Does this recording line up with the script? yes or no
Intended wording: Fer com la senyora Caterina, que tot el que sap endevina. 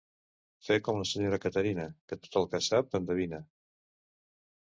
yes